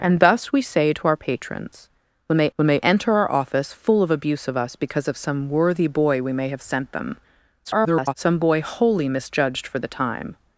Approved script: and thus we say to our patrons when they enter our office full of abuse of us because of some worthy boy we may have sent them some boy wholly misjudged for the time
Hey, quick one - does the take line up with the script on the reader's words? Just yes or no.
no